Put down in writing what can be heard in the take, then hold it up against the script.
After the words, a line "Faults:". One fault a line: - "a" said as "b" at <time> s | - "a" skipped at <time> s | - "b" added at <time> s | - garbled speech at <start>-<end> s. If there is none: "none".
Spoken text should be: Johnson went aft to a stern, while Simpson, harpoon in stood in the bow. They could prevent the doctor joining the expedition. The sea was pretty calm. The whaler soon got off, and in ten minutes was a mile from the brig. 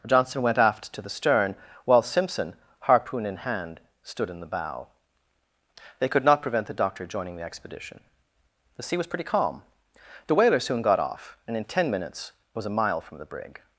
Johnson went aft to the stern, while Simpson, harpoon in hand, stood in the bow. They could not prevent the doctor joining the expedition. The sea was pretty calm. The whaler soon got off, and in ten minutes was a mile from the brig.
Faults:
- "a" said as "the" at 1.0 s
- "hand" added at 3.4 s
- "not" added at 6.2 s